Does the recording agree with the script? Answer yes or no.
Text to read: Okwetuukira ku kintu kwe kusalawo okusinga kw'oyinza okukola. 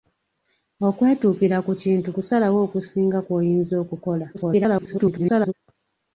no